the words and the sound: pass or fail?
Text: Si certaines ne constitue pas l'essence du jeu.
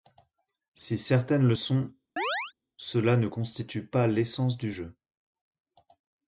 fail